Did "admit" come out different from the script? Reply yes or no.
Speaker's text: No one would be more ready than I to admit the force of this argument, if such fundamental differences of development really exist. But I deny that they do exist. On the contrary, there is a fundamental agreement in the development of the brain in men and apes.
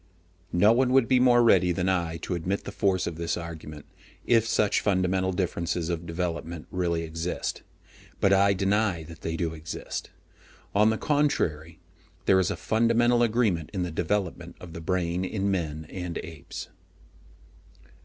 no